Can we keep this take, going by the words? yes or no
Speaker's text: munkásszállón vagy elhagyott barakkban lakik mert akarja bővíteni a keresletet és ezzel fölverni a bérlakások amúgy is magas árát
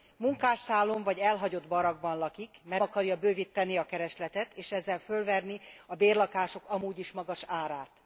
yes